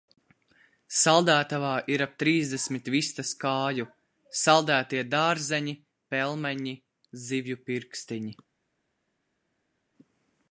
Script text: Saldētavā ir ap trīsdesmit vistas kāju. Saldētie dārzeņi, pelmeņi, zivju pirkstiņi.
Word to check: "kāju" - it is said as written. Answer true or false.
true